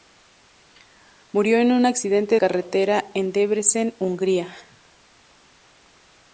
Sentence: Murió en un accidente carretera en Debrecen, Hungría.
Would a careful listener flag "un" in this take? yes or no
no